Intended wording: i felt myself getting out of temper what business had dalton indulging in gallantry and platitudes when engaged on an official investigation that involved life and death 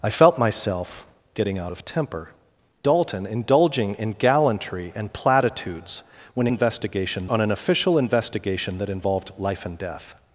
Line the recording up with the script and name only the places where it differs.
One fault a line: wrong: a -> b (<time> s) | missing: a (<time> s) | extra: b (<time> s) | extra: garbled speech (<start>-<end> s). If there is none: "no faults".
missing: what business had (2.3 s)
wrong: engaged -> investigation (6.5 s)